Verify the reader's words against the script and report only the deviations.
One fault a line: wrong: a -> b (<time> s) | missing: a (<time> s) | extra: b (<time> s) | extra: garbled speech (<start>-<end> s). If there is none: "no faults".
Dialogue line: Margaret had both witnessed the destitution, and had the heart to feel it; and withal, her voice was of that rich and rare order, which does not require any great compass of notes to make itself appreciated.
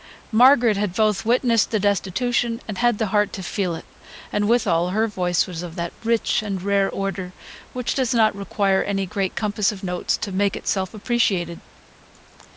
no faults